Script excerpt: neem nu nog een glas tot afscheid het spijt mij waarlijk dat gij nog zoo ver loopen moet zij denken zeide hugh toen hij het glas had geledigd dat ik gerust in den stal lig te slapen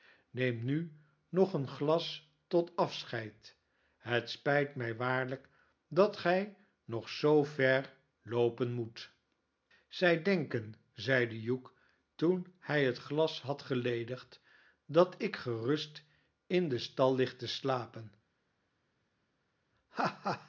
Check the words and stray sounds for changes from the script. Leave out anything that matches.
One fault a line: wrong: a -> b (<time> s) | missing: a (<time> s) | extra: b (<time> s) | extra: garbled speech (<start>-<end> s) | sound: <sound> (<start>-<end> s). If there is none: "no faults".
no faults